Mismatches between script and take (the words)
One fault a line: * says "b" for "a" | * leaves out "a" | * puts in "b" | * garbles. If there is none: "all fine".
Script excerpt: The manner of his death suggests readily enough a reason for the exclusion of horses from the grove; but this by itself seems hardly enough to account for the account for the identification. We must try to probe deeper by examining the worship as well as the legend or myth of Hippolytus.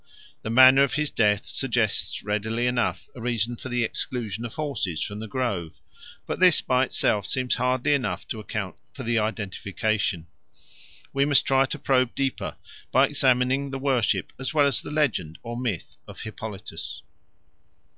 * leaves out "account for the"